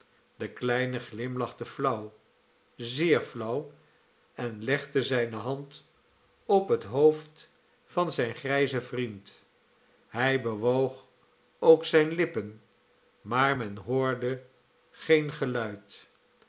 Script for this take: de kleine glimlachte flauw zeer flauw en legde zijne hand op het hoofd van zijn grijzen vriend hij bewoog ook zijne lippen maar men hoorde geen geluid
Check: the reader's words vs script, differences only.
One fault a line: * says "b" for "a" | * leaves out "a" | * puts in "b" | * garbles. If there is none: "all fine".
all fine